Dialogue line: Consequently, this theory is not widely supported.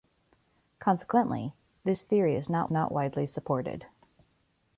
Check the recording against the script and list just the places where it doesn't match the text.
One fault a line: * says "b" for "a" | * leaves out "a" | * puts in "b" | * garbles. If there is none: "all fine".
* puts in "not"